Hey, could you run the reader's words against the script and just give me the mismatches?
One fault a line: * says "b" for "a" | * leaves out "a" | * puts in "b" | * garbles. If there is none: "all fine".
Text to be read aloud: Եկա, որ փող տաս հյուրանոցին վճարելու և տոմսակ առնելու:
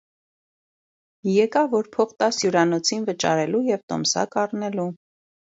all fine